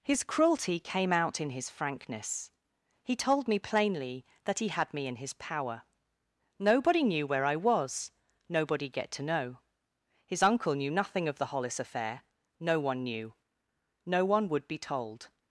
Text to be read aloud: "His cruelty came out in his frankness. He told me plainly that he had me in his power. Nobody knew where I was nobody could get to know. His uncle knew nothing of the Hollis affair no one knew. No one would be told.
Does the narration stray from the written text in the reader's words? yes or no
yes